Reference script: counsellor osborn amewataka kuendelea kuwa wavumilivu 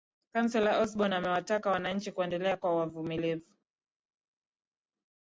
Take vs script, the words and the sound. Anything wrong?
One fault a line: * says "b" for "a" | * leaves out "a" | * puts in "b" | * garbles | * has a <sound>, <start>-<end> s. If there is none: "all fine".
* puts in "wananchi"